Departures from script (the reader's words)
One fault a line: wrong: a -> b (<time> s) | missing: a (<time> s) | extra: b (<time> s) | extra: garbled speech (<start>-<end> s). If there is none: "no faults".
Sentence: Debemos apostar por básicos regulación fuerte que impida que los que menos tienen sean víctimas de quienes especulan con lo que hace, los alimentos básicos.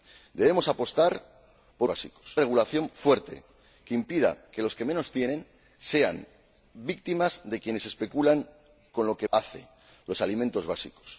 no faults